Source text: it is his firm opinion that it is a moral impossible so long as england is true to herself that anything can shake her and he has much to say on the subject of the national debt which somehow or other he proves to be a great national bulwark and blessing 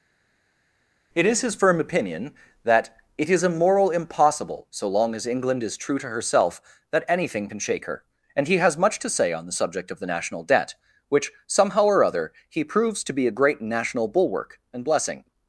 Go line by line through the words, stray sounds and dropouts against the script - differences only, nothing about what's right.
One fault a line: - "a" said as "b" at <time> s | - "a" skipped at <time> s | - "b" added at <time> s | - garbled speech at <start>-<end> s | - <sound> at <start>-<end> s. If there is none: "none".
none